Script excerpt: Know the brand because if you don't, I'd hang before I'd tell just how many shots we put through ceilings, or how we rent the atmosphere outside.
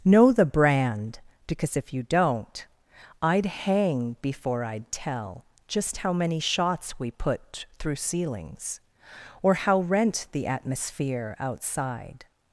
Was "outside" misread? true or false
false